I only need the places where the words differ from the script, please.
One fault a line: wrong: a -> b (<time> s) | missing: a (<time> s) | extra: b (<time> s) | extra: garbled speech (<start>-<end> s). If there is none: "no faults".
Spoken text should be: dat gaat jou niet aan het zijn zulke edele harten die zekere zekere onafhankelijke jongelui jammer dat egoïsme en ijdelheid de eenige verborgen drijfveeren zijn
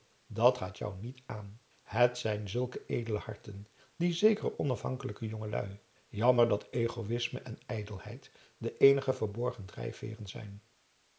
missing: zekere (4.6 s)